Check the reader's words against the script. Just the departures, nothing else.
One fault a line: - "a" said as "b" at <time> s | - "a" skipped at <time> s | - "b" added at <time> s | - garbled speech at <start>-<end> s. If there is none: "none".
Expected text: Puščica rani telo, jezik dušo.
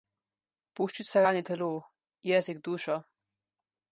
none